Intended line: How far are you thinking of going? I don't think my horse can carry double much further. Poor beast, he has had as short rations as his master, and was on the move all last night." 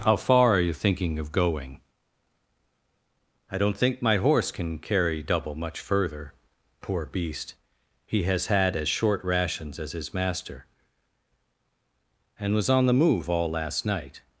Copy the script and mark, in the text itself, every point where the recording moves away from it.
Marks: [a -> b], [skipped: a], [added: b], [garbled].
How far are you thinking of going? I don't think my horse can carry double much further. Poor beast, he has had as short rations as his master, and was on the move all last night."